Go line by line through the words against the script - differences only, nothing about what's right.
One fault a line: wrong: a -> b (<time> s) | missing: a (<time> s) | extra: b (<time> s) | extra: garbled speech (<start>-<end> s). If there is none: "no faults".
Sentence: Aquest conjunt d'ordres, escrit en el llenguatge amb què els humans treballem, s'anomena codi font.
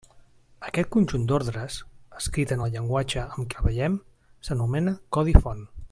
missing: què els humans (3.5 s)